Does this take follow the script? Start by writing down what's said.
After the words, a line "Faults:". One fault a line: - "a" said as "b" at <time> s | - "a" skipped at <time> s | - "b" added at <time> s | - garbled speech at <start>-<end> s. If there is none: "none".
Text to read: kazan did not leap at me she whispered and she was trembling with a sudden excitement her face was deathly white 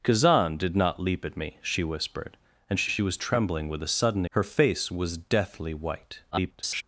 kazan did not leap at me she whispered and she she was trembling with a sudden her face was deathly white [garbled]
Faults:
- "she" added at 2.9 s
- "excitement" skipped at 4.2 s
- garbled speech at 6.3-6.8 s